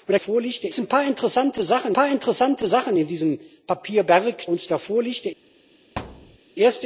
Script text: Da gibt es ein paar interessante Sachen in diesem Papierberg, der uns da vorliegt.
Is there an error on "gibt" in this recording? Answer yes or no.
yes